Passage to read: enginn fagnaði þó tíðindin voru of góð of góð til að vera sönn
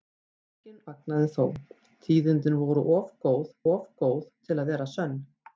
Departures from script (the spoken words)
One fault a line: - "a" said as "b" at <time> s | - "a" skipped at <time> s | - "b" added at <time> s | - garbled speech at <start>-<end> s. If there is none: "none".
none